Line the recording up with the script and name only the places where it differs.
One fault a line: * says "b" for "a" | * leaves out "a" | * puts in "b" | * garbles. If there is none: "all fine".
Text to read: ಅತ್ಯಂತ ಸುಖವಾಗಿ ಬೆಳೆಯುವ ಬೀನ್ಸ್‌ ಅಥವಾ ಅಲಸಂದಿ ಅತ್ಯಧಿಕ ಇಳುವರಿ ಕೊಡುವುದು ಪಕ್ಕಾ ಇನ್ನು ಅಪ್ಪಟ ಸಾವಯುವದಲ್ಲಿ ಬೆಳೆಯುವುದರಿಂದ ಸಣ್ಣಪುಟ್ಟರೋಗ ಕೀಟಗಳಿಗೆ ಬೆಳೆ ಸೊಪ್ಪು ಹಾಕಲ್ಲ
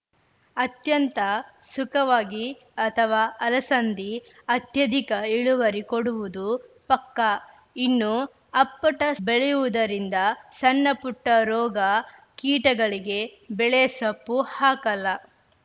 * leaves out "ಬೆಳೆಯುವ ಬೀನ್ಸ್"
* leaves out "ಸಾವಯುವದಲ್ಲಿ"